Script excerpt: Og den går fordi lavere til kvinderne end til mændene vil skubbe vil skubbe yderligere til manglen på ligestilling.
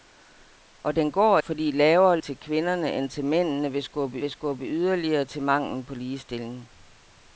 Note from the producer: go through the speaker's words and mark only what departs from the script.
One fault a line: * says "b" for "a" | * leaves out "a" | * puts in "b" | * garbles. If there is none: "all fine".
all fine